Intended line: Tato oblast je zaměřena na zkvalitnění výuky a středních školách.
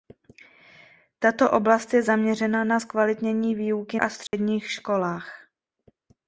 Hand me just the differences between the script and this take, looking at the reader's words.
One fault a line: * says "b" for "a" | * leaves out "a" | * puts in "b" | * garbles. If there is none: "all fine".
all fine